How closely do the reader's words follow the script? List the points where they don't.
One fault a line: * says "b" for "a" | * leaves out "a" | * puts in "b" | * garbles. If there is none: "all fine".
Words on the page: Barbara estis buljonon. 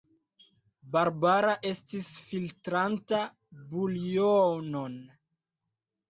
* puts in "filtranta"